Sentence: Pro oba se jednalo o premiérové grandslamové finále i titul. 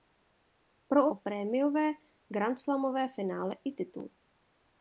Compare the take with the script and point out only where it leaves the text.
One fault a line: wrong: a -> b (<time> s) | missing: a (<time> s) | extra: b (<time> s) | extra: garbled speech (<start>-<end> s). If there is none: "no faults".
missing: oba se jednalo (1.1 s)